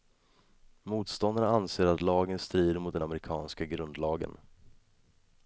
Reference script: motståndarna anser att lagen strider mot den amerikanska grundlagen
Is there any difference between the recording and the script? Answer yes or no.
no